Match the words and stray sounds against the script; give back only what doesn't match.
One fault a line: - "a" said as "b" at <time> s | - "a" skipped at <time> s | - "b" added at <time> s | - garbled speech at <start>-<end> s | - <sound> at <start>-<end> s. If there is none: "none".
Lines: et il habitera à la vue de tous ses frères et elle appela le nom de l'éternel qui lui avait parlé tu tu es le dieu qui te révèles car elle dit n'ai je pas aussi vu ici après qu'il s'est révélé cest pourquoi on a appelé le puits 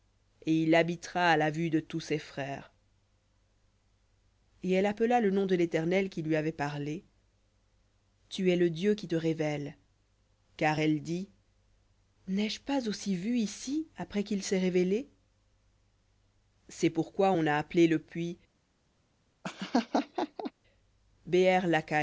- "tu" skipped at 8.5 s
- laugh at 19.4-20.5 s